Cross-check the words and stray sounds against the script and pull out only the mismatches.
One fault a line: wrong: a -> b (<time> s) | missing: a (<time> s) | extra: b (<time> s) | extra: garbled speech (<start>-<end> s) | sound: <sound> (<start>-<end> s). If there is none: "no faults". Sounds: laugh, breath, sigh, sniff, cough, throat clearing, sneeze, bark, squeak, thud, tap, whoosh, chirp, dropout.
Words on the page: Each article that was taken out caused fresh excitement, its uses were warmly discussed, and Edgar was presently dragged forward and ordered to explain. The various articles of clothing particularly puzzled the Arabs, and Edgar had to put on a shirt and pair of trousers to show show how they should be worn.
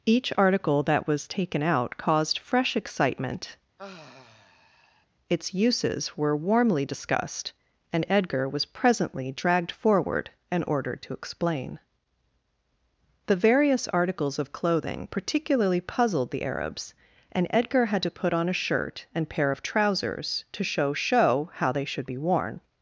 sound: sigh (3.8-5.1 s)